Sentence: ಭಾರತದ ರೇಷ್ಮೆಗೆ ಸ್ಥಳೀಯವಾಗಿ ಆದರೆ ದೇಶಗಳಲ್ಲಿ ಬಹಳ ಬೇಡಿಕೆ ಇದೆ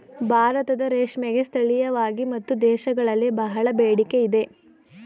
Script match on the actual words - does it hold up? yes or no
no